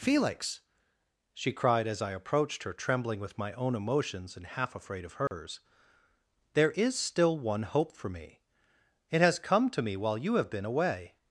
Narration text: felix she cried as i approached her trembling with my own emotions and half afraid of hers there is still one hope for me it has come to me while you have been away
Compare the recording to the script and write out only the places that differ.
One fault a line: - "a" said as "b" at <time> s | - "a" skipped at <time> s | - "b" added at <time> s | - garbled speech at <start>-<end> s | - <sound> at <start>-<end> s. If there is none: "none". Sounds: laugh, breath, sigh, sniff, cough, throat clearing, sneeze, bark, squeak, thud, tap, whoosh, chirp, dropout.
- dropout at 5.3-5.3 s